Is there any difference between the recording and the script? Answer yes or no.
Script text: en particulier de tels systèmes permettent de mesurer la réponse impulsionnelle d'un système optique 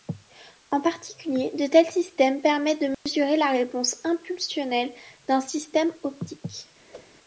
no